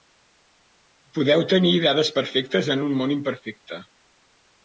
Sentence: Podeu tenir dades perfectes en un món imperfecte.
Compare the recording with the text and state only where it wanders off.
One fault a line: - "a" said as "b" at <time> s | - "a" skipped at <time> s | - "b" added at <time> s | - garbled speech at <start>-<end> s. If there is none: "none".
none